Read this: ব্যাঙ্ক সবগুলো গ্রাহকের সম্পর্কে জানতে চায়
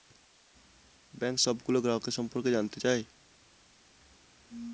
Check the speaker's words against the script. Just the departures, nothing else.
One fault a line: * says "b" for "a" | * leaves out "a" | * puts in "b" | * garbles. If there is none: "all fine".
all fine